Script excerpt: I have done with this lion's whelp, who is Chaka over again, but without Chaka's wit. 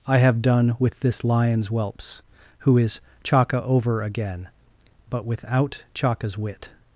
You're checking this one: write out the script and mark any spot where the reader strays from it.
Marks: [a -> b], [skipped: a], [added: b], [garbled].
I have done with this lion's [whelp, -> whelps] who is Chaka over again, but without Chaka's wit.